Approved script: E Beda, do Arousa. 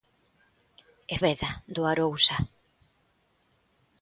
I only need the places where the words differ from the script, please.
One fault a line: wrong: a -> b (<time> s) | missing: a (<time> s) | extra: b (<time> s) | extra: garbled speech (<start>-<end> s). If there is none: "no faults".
no faults